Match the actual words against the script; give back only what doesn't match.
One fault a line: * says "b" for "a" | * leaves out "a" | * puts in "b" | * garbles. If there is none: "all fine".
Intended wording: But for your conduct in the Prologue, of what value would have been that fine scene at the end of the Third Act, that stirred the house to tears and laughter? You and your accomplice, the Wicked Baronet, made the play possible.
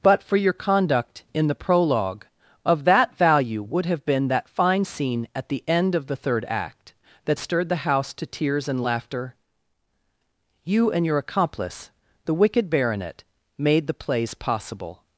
* says "that" for "what"
* says "plays" for "play"